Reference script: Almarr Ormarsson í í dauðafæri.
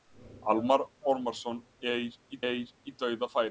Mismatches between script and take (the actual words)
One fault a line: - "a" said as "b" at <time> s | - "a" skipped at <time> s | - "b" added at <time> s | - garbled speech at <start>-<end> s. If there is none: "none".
none